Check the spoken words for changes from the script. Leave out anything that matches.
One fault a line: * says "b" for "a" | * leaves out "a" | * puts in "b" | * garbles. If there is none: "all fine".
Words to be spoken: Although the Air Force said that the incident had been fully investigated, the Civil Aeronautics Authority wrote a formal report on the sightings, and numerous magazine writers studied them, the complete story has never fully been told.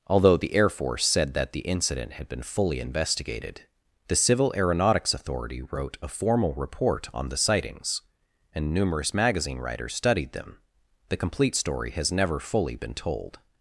all fine